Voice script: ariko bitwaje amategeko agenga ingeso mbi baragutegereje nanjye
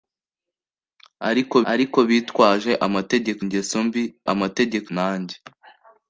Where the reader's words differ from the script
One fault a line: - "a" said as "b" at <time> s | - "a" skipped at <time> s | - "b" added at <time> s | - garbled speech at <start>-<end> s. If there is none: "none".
- "ariko" added at 1.7 s
- "agenga" skipped at 3.4 s
- "baragutegereje" said as "amategeko" at 4.3 s